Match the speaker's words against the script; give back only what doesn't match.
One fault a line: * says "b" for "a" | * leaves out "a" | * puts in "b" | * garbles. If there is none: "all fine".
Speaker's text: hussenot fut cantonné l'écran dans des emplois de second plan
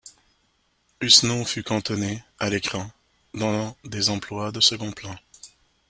* puts in "à"